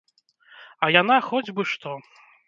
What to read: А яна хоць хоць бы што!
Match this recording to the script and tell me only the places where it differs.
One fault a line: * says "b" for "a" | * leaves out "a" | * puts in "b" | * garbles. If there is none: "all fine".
* leaves out "хоць"